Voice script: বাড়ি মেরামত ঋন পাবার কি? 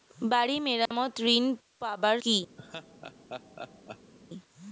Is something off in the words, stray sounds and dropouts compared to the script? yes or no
yes